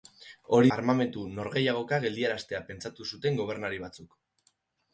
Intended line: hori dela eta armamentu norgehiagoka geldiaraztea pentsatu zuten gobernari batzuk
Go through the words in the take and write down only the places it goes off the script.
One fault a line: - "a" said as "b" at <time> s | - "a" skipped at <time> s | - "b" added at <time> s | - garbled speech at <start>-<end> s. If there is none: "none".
- "dela eta" skipped at 0.7 s